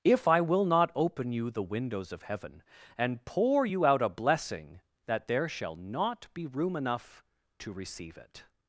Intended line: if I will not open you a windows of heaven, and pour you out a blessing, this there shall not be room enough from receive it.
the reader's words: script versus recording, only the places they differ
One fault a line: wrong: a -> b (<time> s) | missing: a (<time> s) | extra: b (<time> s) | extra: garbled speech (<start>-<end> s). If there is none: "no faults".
wrong: a -> the (1.5 s)
wrong: this -> that (5.1 s)
wrong: from -> to (7.6 s)